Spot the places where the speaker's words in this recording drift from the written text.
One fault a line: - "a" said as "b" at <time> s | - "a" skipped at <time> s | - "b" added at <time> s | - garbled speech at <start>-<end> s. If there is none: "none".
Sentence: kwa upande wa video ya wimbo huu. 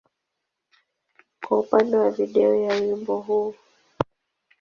none